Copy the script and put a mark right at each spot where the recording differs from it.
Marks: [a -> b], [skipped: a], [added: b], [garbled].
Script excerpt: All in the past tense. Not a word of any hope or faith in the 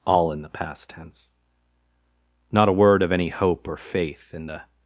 All in the past tense. Not a word of any hope or faith in the